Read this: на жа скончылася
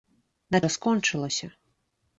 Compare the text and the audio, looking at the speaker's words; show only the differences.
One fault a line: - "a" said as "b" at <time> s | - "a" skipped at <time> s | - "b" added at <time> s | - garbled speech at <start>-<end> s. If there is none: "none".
none